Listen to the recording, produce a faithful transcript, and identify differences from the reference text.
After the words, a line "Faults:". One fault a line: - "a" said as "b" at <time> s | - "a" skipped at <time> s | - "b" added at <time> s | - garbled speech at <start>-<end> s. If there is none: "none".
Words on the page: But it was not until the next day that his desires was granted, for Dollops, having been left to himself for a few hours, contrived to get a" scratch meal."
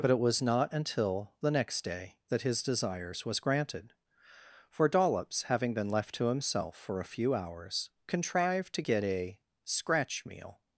But it was not until the next day that his desires was granted, for Dollops, having been left to himself for a few hours, contrived to get a" scratch meal."
Faults:
none